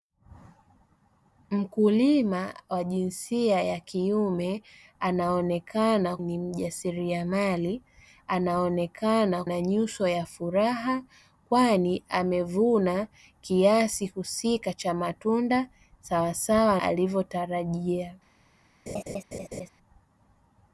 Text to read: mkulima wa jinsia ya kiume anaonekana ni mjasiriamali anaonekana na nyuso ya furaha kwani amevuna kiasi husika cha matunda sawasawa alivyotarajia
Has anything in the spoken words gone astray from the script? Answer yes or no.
no